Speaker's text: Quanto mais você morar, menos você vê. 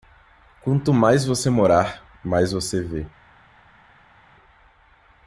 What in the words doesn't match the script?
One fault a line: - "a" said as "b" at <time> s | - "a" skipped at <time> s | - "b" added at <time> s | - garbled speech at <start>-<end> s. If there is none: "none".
- "menos" said as "mais" at 2.2 s